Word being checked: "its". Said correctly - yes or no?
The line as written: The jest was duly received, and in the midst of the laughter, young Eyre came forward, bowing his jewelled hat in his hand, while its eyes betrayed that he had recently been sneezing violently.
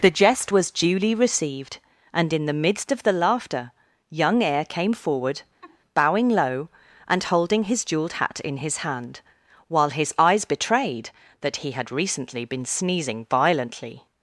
no